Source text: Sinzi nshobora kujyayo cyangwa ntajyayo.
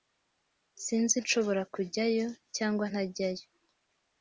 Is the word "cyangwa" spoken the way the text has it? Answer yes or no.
yes